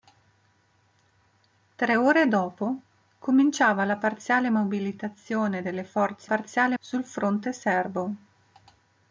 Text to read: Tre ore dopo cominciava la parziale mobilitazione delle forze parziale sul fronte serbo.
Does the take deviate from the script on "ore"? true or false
false